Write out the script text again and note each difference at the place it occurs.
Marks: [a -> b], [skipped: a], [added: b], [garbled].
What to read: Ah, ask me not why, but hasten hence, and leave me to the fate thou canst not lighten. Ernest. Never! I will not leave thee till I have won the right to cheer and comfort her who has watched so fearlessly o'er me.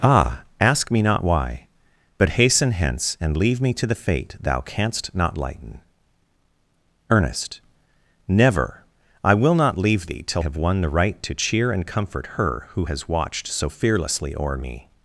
Ah, ask me not why, but hasten hence, and leave me to the fate thou canst not lighten. Ernest. Never! I will not leave thee till [skipped: I] have won the right to cheer and comfort her who has watched so fearlessly o'er me.